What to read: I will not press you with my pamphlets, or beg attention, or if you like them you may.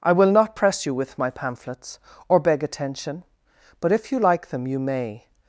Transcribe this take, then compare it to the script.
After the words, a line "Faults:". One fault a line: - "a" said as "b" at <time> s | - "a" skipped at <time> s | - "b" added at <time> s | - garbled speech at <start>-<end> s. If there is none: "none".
I will not press you with my pamphlets, or beg attention, but if you like them you may.
Faults:
- "or" said as "but" at 3.8 s